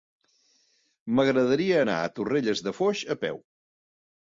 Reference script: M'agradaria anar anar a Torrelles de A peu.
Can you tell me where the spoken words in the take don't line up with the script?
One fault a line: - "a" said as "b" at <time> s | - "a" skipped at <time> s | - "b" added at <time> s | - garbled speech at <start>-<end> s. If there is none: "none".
- "anar" skipped at 2.0 s
- "Foix" added at 2.8 s